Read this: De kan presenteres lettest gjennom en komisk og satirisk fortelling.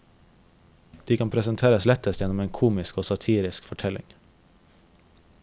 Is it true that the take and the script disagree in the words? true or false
false